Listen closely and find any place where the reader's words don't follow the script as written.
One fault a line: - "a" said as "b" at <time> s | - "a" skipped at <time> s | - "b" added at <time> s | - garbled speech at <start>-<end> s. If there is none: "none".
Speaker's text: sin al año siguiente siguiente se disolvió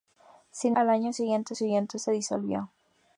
none